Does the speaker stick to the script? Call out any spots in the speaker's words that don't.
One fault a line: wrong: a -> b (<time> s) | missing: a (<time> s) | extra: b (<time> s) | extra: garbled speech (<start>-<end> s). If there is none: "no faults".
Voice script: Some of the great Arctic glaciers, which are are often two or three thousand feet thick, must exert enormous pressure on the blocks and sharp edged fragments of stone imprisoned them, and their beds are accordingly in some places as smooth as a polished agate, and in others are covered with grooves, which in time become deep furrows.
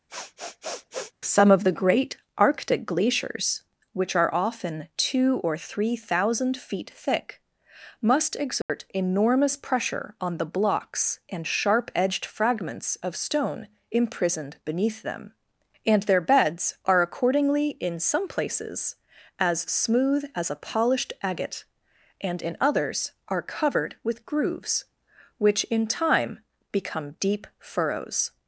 missing: are (4.3 s)
extra: beneath (14.7 s)